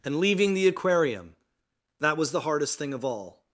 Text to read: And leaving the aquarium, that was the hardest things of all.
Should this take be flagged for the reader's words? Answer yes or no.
yes